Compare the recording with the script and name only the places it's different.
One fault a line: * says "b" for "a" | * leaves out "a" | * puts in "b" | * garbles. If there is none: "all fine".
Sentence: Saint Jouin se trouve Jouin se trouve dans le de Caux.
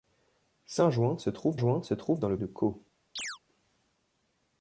all fine